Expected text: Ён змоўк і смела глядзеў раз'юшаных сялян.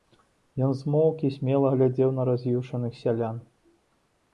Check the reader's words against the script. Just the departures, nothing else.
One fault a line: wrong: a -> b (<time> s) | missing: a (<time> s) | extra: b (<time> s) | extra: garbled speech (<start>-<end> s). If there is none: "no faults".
extra: на (2.2 s)